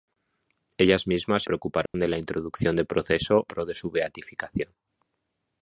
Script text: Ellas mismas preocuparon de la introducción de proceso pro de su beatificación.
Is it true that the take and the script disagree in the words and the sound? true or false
true